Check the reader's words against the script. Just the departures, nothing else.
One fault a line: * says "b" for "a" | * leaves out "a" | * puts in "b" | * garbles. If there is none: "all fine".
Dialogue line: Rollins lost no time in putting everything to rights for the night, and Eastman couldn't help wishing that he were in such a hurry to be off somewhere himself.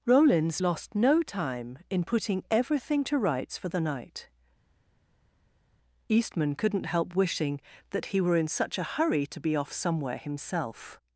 * leaves out "and"